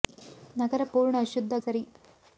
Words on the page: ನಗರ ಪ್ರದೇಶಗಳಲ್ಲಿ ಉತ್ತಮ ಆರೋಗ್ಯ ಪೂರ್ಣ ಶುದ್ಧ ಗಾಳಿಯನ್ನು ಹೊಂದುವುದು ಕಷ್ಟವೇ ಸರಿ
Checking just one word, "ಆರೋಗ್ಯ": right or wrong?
wrong